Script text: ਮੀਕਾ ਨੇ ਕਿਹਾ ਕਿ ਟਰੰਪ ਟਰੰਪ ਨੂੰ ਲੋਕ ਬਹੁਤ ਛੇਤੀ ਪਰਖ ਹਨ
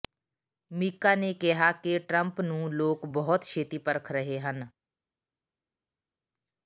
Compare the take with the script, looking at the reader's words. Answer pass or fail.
fail